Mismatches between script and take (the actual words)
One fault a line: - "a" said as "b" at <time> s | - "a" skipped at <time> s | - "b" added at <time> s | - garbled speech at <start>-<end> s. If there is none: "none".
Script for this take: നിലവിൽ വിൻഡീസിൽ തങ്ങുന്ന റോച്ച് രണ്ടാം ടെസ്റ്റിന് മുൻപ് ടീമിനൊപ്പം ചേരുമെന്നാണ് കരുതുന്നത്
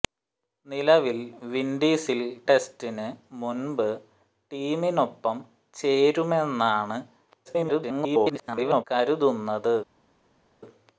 - "തങ്ങുന്ന റോച്ച് രണ്ടാം" skipped at 2.2 s
- garbled speech at 7.5-8.8 s